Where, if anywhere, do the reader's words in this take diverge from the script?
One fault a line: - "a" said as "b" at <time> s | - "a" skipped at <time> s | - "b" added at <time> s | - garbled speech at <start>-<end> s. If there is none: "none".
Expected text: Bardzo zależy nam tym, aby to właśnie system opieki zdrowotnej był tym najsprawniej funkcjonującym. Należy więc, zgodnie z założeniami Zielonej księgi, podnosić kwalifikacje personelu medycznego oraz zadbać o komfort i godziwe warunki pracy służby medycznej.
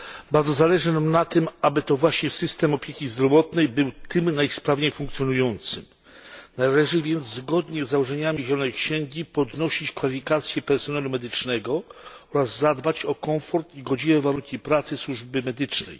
- "na" added at 1.1 s